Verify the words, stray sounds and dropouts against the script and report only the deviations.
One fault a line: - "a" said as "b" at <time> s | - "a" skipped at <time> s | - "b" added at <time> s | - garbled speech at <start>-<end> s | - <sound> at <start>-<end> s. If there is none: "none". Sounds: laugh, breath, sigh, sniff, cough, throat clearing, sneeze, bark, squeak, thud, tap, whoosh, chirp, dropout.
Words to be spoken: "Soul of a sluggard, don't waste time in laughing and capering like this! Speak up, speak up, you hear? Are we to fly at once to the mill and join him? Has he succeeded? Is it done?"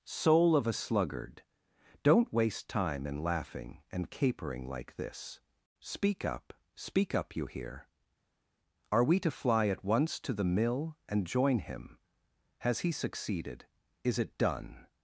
none